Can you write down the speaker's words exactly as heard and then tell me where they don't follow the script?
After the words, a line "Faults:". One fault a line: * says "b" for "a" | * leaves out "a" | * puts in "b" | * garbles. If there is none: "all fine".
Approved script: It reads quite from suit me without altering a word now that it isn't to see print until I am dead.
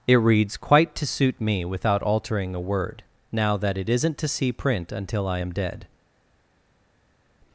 It reads quite to suit me without altering a word now that it isn't to see print until I am dead.
Faults:
* says "to" for "from"